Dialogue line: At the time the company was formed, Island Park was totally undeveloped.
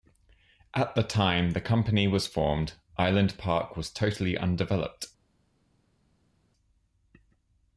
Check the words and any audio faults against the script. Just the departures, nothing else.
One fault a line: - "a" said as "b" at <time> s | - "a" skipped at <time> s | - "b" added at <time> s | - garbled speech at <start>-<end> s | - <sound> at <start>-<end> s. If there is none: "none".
none